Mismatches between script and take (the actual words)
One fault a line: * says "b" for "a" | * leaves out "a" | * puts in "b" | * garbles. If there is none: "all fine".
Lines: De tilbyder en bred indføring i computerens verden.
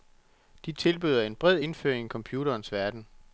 all fine